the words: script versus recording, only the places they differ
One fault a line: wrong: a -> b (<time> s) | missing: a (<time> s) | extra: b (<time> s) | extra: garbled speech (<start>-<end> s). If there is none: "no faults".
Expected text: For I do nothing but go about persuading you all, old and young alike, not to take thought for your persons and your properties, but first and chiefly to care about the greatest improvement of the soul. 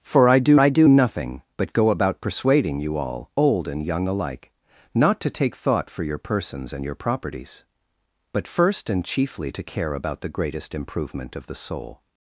extra: I do (0.6 s)